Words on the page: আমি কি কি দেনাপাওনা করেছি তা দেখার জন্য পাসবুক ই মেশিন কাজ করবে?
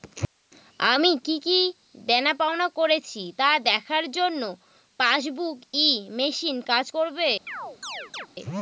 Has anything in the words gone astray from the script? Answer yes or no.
no